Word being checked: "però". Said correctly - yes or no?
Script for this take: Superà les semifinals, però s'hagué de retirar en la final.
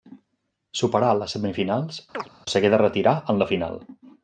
no